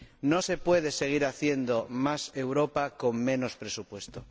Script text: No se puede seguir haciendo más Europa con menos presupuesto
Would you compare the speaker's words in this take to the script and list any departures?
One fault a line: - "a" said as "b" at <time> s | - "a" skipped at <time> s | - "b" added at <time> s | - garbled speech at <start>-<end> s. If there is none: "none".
none